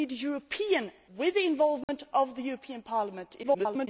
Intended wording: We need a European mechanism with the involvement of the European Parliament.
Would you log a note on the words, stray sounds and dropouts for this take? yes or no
yes